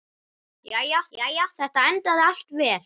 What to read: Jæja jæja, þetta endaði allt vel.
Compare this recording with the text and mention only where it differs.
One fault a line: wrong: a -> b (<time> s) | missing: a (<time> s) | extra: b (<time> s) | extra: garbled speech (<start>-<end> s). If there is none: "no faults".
no faults